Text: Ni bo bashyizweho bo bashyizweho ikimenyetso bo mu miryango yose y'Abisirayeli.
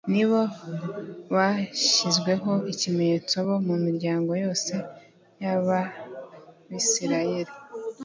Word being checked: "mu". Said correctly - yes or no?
yes